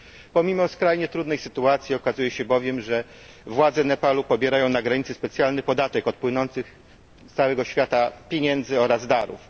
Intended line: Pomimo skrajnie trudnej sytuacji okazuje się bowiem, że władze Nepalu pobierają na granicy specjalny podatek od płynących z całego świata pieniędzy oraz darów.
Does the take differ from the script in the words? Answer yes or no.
no